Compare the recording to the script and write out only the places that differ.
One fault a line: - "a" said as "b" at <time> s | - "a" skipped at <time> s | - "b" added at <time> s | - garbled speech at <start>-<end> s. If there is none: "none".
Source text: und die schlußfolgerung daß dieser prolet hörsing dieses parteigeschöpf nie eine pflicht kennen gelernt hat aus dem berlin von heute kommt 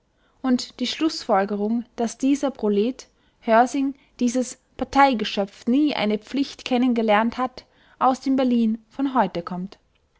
none